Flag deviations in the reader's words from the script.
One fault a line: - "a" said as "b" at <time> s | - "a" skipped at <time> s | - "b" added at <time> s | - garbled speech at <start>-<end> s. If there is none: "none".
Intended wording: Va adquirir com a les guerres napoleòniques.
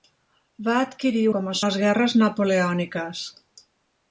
none